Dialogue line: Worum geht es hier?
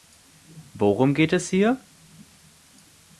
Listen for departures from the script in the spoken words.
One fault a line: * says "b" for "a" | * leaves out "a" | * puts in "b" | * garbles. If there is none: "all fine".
all fine